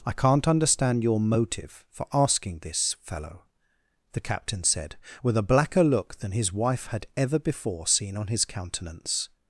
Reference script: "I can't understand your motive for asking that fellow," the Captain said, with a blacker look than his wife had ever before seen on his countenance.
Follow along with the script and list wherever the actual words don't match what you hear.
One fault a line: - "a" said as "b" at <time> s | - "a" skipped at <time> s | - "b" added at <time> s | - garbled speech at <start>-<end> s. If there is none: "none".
- "that" said as "this" at 2.6 s